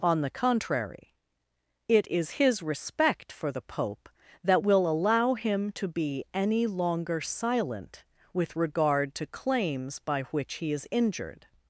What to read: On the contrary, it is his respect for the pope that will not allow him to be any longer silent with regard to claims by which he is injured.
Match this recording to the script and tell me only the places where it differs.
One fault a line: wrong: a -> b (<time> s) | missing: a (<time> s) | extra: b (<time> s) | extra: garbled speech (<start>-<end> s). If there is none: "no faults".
missing: not (4.9 s)